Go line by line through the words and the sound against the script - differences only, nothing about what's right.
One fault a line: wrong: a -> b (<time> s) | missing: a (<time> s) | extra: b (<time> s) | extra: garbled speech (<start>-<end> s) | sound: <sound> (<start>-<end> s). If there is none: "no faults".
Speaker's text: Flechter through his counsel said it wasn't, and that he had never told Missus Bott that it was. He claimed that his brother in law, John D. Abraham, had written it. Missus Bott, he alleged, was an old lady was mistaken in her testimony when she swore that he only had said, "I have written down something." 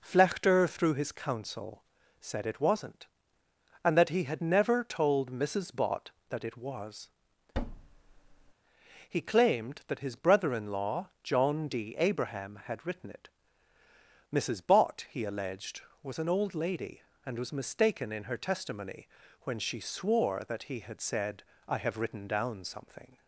sound: thud (7.5-8.5 s)
extra: and (17.2 s)
missing: only (20.8 s)